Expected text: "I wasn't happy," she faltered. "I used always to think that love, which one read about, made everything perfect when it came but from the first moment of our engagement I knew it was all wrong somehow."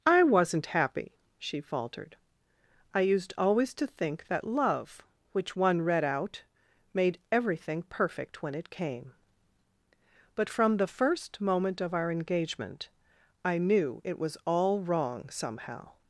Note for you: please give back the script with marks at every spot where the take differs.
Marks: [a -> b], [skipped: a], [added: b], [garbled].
"I wasn't happy," she faltered. "I used always to think that love, which one read [about, -> out] made everything perfect when it came but from the first moment of our engagement I knew it was all wrong somehow."